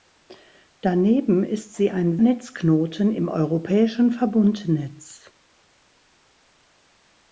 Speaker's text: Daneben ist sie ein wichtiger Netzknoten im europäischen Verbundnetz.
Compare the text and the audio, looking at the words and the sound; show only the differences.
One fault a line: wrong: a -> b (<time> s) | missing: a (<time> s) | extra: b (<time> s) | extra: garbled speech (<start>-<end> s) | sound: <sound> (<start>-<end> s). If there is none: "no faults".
missing: wichtiger (2.2 s)